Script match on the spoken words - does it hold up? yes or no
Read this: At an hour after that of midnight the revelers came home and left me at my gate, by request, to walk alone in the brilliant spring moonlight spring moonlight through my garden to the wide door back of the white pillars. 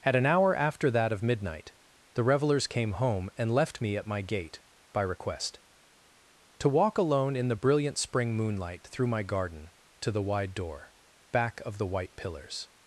no